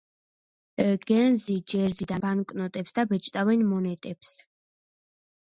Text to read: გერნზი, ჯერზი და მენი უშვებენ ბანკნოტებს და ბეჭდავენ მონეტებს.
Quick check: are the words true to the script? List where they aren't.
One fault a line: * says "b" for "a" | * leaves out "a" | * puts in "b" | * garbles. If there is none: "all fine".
* leaves out "მენი უშვებენ"